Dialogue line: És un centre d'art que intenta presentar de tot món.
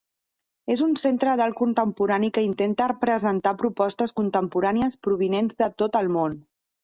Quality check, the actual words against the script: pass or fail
fail